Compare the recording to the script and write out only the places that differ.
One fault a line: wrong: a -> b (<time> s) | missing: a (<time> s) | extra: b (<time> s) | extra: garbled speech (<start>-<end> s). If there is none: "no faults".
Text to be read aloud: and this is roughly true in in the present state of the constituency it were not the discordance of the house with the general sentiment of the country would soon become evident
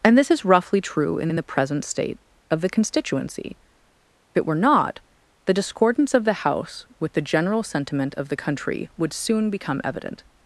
no faults